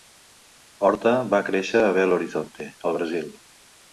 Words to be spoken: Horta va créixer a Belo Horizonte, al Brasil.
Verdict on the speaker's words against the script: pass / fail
pass